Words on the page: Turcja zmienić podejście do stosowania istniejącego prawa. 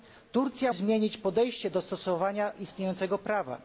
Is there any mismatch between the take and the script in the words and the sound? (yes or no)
no